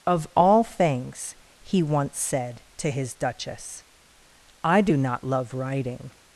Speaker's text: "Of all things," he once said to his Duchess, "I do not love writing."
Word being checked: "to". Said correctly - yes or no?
yes